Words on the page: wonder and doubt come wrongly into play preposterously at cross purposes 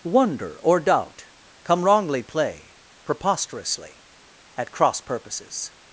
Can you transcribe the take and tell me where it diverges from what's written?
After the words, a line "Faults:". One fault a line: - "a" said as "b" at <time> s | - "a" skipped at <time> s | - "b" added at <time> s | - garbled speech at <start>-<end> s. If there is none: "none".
wonder or doubt come wrongly play preposterously at cross purposes
Faults:
- "and" said as "or" at 0.6 s
- "into" skipped at 2.2 s